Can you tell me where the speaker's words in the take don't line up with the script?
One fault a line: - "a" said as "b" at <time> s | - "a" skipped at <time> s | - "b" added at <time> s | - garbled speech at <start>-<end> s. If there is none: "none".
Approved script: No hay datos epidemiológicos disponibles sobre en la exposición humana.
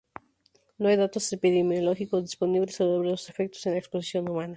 - "los efectos" added at 3.1 s